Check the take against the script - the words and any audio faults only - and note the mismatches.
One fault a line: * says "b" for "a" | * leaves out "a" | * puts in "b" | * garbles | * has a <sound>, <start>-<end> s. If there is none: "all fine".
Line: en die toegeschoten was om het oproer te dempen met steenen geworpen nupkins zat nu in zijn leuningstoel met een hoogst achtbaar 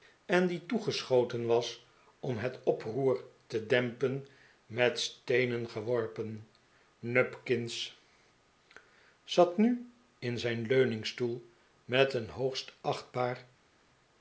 all fine